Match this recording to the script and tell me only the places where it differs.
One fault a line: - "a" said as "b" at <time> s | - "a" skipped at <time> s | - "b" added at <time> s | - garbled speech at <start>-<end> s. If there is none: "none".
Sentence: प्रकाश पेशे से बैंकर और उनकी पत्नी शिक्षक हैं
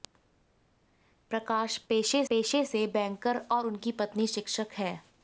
- "पेशे" added at 2.3 s